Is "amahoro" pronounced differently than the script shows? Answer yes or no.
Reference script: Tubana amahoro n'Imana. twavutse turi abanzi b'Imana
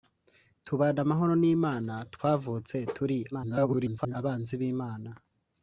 no